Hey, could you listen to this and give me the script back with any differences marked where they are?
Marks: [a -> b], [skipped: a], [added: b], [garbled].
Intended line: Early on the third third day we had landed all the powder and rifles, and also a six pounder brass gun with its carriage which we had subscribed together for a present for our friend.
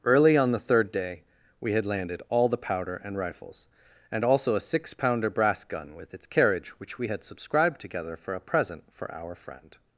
Early on the third [skipped: third] day we had landed all the powder and rifles, and also a six pounder brass gun with its carriage which we had subscribed together for a present for our friend.